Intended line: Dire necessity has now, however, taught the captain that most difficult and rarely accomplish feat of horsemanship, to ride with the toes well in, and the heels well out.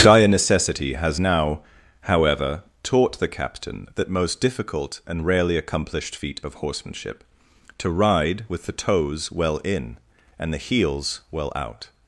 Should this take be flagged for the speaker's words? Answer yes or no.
yes